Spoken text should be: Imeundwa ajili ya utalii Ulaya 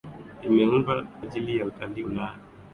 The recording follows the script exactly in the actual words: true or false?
true